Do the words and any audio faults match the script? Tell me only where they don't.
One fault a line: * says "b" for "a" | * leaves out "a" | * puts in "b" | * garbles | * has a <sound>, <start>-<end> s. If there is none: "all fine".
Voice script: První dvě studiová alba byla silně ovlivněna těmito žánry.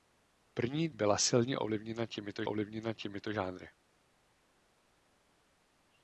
* says "byla silně ovlivněna těmito" for "dvě studiová alba byla silně"